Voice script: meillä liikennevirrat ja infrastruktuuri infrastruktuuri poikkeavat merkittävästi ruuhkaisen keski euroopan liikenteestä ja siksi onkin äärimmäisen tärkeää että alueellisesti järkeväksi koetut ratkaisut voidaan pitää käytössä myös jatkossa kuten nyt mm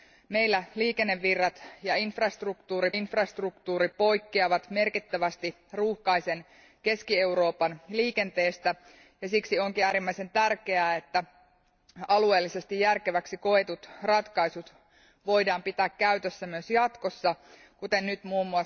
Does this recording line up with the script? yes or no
yes